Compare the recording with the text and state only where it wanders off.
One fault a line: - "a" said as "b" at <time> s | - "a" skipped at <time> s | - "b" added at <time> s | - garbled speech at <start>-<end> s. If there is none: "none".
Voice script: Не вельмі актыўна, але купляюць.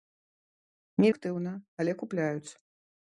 - "вельмі" skipped at 1.1 s